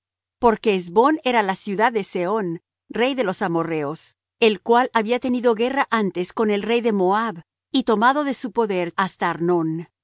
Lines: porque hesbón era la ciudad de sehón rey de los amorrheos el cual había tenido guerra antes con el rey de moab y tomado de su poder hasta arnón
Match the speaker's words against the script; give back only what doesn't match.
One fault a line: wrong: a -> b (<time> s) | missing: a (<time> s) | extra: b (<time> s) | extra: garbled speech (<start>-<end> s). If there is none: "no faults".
no faults